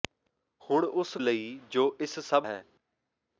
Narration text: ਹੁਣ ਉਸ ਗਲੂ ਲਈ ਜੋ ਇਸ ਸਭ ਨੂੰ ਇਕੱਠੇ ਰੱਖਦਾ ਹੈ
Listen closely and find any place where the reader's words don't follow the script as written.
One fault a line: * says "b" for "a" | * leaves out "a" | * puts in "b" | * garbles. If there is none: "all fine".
* leaves out "ਗਲੂ"
* leaves out "ਨੂੰ ਇਕੱਠੇ ਰੱਖਦਾ"